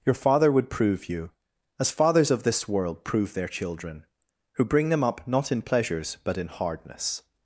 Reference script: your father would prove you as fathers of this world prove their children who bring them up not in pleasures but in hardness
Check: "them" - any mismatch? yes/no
no